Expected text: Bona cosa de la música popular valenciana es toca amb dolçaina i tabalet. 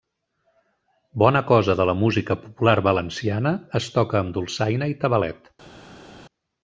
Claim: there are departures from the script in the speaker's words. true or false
false